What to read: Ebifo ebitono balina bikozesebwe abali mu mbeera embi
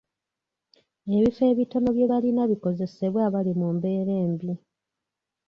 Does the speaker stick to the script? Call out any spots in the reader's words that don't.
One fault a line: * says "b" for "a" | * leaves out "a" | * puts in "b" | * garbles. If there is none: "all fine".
* puts in "bye"